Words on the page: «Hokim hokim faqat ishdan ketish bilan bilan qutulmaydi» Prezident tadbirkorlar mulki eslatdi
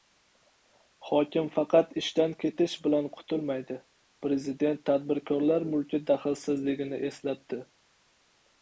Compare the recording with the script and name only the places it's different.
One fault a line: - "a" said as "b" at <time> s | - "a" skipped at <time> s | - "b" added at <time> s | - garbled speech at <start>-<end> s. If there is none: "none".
- "hokim" skipped at 1.5 s
- "bilan" skipped at 3.1 s
- "daxlsizligini" added at 6.1 s